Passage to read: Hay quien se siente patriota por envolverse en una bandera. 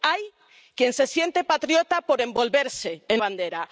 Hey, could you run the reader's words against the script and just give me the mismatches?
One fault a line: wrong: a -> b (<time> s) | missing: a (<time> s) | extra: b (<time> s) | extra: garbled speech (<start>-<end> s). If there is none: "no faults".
missing: una (3.2 s)